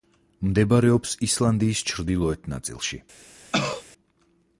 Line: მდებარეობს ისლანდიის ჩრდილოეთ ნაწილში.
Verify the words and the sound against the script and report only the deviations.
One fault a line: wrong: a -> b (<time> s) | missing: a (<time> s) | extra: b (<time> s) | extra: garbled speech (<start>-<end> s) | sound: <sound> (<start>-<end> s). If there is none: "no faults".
sound: cough (3.5-3.8 s)